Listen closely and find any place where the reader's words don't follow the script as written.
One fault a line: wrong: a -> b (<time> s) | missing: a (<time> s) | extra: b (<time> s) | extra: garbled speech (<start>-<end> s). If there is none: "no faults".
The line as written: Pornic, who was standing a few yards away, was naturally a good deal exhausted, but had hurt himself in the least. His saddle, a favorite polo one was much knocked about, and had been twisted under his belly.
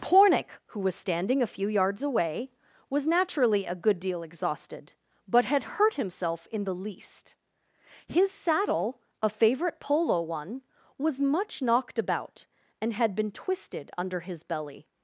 no faults